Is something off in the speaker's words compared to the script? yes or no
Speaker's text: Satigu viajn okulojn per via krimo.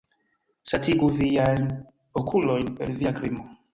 no